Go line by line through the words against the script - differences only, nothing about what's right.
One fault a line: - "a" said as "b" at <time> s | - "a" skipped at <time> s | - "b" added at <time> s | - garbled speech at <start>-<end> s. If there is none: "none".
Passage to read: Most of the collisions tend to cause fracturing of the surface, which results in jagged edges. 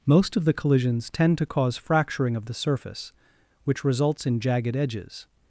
none